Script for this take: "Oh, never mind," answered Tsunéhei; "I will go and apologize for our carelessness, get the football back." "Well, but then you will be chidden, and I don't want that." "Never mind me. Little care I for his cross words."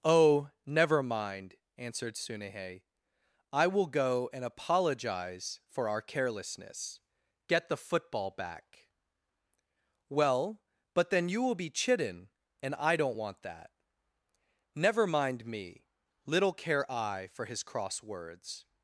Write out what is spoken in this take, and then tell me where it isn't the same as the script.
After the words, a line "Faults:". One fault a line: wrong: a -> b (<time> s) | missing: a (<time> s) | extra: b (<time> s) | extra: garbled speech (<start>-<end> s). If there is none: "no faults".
"Oh, never mind," answered Tsunéhei; "I will go and apologize for our carelessness, get the football back." "Well, but then you will be chidden, and I don't want that." "Never mind me. Little care I for his cross words."
Faults:
no faults